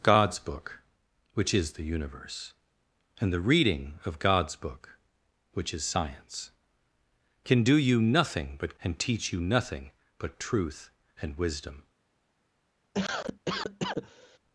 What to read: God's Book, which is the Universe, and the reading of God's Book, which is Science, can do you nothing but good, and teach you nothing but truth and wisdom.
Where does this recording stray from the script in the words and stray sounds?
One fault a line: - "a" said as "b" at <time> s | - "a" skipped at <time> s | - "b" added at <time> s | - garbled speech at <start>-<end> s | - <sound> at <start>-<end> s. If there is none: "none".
- "good" skipped at 8.8 s
- cough at 12.9-14.4 s